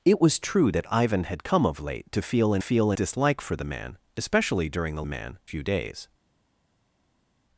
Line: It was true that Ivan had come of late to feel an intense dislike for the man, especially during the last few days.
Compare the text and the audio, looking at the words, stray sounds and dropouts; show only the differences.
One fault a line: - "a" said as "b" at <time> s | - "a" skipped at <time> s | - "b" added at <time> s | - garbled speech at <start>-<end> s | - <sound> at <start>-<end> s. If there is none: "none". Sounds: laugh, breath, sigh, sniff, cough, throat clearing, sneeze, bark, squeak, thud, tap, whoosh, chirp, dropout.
- "intense" said as "feel" at 2.6 s
- "last" said as "man" at 5.0 s